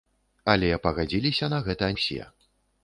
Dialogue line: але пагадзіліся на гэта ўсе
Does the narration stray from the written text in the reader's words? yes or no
no